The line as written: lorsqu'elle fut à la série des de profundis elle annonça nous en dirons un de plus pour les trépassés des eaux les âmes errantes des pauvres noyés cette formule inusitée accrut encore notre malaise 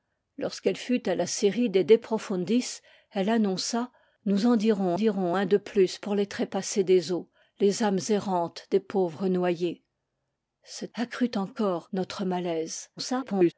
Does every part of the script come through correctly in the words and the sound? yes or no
no